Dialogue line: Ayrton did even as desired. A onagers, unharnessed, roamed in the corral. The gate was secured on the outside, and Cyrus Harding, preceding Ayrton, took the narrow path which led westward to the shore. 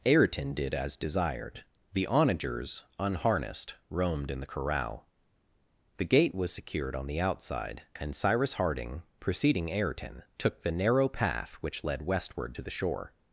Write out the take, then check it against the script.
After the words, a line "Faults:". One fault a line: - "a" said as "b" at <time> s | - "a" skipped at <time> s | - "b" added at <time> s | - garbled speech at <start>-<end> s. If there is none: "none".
Ayrton did as desired. The onagers, unharnessed, roamed in the corral. The gate was secured on the outside, and Cyrus Harding, preceding Ayrton, took the narrow path which led westward to the shore.
Faults:
- "even" skipped at 0.7 s
- "A" said as "The" at 1.9 s